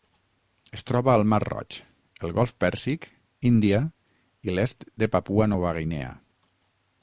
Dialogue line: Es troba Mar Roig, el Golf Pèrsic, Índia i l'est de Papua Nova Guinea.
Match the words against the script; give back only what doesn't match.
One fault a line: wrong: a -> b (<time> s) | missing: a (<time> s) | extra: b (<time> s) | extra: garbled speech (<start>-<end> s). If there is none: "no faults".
extra: al (1.1 s)